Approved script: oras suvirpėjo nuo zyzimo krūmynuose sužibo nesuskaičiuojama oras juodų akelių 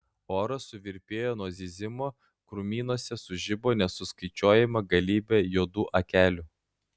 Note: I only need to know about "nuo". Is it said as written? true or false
true